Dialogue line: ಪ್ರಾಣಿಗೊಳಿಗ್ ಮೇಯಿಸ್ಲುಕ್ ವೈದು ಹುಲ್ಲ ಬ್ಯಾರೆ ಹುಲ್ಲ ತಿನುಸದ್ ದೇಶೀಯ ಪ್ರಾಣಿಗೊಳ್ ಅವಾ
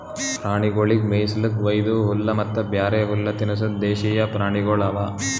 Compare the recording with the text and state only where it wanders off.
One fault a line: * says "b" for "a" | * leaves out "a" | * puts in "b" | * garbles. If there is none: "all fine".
* puts in "ಮತ್ತ"